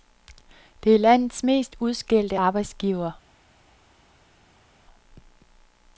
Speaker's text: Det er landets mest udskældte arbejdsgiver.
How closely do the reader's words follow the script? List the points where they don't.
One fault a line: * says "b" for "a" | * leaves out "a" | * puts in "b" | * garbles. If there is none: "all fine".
all fine